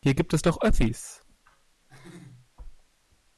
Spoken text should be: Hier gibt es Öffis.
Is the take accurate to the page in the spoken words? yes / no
no